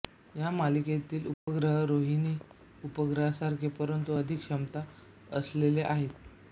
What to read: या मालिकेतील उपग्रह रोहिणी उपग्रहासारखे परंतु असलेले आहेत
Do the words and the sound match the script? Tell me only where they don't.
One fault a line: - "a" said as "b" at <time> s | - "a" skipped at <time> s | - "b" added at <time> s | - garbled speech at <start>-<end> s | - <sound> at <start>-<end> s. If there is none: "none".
- dropout at 1.3-1.5 s
- "अधिक क्षमता" added at 4.1 s